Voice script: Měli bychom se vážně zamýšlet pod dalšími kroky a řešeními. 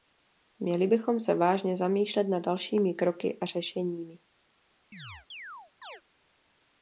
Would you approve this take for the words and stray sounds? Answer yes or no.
no